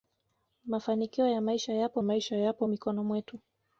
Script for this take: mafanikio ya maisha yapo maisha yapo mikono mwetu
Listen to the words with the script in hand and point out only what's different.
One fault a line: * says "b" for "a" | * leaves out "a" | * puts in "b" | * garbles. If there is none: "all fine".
all fine